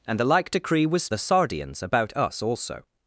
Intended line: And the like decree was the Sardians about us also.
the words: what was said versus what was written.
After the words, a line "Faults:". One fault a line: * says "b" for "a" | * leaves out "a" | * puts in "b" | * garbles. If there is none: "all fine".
And the like decree was the Sardians about us also.
Faults:
all fine